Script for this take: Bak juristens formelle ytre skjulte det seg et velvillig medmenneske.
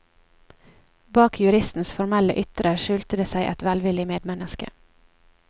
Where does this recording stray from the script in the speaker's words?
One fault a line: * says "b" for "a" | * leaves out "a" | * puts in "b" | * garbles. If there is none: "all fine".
all fine